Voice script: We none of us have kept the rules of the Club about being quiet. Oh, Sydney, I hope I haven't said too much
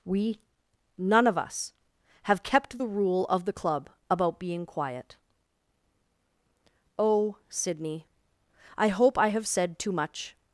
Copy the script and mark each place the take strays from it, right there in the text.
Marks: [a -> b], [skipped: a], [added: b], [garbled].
We none of us have kept the [rules -> rule] of the Club about being quiet. Oh, Sydney, I hope I [haven't -> have] said too much